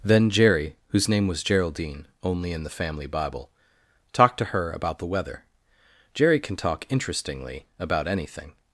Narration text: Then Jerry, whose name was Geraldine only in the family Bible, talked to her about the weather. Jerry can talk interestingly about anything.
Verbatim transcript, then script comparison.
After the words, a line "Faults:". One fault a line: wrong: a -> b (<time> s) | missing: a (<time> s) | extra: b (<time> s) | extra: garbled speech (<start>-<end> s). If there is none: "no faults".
Then Jerry, whose name was Geraldine only in the family Bible, talked to her about the weather. Jerry can talk interestingly about anything.
Faults:
no faults